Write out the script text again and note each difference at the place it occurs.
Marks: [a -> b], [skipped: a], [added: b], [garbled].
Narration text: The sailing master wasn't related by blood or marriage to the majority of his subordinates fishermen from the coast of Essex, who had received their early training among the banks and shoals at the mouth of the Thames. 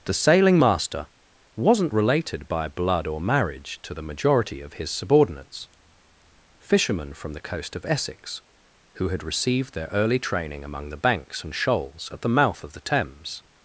The sailing master wasn't related by blood or marriage to the majority of his subordinates fishermen from the coast of Essex, who had received their early training among the banks and shoals at the mouth of the Thames.